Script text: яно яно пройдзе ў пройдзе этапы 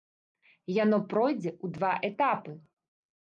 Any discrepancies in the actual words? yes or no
yes